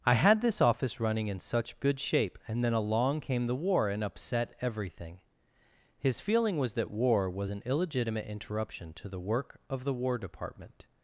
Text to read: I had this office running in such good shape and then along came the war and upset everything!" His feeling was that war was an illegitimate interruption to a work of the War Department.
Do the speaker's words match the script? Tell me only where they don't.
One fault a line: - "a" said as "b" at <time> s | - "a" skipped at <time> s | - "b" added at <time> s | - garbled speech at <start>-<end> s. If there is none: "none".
- "a" said as "the" at 9.1 s